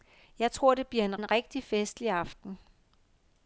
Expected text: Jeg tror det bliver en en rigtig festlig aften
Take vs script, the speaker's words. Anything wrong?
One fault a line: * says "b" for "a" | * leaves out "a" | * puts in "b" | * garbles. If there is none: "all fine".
all fine